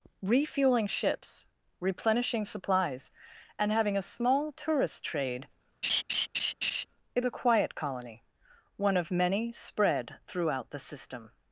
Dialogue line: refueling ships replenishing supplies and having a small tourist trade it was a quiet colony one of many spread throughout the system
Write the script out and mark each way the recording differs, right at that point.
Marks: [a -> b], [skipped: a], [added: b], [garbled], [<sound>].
refueling ships replenishing supplies and having a small tourist trade [laugh] it [skipped: was] a quiet colony one of many spread throughout the system